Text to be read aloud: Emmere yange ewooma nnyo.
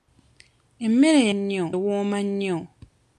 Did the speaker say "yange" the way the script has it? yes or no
no